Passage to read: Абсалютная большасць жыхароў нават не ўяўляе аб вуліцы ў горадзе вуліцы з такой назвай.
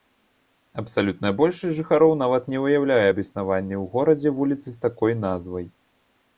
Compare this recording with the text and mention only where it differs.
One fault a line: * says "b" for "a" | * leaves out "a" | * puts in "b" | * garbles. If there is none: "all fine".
* says "існаванні" for "вуліцы"